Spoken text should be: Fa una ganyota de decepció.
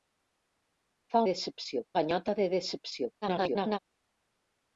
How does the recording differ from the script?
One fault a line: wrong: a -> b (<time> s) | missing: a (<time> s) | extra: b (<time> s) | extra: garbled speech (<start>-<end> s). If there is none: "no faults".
wrong: una -> decepció (1.3 s)
extra: garbled speech (3.2-3.8 s)